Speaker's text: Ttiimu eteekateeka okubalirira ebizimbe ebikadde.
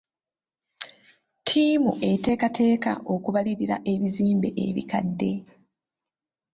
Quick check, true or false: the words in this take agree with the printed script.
true